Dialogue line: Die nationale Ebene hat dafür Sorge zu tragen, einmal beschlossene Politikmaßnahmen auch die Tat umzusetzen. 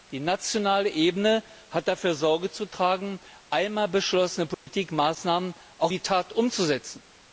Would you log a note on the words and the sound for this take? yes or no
yes